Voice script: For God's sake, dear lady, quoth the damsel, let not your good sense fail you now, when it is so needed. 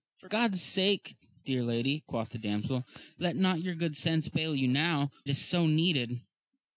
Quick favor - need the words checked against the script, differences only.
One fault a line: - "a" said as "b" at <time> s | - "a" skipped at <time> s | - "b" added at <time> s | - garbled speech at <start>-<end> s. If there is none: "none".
- "when it" skipped at 5.1 s